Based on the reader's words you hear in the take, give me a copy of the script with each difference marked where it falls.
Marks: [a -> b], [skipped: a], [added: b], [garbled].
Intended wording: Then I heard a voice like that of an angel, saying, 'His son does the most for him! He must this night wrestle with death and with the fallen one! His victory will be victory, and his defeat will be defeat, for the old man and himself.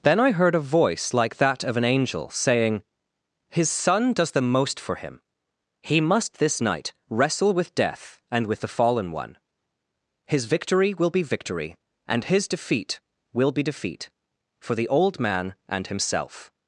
Then I heard a voice like that of an angel, saying, 'His son does the most for him! He must this night wrestle with death and with the fallen one! His victory will be victory, and his defeat will be defeat, for the old man and himself.